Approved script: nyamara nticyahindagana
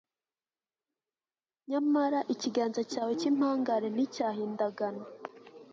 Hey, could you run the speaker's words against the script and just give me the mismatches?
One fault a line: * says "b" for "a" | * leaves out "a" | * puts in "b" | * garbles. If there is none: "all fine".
* puts in "ikiganza cyawe cy'impangare"